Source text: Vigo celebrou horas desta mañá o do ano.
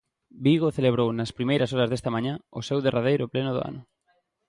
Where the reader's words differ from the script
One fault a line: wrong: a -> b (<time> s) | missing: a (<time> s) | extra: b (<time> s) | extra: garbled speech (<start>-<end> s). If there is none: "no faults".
extra: nas primeiras (1.1 s)
extra: seu derradeiro pleno (2.7 s)